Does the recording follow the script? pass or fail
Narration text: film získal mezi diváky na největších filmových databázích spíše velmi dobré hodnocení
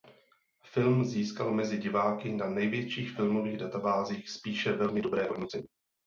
pass